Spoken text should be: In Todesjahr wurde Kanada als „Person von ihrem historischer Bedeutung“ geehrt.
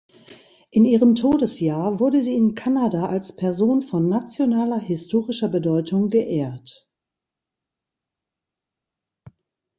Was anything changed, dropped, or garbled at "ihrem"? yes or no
yes